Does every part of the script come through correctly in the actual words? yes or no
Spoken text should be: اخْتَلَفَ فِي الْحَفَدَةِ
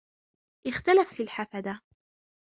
yes